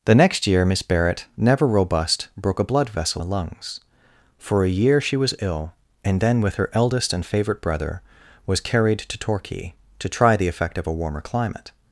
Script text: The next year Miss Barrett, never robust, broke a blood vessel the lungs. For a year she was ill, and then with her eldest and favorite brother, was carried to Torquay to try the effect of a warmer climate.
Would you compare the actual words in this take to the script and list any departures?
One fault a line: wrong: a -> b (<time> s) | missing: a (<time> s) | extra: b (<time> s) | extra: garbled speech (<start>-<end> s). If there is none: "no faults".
no faults